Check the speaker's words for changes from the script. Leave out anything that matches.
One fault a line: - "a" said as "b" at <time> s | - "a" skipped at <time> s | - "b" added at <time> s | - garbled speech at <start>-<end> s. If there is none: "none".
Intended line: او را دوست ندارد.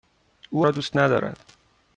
none